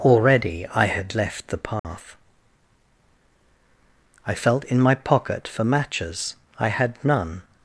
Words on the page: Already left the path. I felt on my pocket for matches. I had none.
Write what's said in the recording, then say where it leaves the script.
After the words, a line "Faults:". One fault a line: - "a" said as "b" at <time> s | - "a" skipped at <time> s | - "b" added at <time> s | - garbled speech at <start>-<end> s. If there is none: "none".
Already I had left the path. I felt in my pocket for matches. I had none.
Faults:
- "I had" added at 0.7 s
- "on" said as "in" at 4.6 s